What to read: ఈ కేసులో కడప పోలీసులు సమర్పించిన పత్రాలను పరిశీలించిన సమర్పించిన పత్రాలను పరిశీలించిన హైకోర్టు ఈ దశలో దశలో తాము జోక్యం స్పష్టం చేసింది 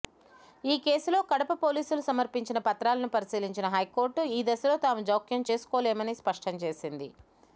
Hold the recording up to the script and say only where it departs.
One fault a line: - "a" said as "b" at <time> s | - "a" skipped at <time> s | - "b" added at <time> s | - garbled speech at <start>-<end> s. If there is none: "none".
- "సమర్పించిన పత్రాలను పరిశీలించిన" skipped at 3.7 s
- "దశలో" skipped at 4.8 s
- "చేసుకోలేమని" added at 5.5 s